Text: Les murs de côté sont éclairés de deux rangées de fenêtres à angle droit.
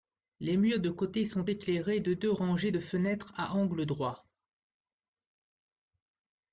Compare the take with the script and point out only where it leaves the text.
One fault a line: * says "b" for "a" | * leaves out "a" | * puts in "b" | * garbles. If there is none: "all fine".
all fine